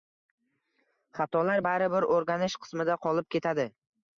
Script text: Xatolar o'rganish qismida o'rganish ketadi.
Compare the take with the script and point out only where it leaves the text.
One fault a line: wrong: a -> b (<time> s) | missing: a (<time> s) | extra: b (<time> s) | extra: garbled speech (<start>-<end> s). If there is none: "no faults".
extra: baribir (1.7 s)
wrong: o'rganish -> qolib (3.1 s)